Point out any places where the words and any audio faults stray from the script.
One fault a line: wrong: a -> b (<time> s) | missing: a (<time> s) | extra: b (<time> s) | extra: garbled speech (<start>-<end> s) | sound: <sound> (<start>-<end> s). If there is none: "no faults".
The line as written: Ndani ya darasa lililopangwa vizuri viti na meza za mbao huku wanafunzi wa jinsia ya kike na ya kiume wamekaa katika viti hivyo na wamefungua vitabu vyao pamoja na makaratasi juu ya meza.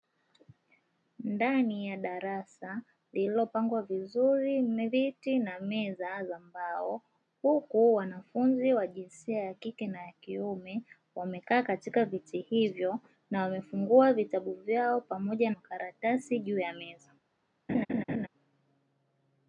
missing: na (15.5 s)
sound: laugh (17.7-18.3 s)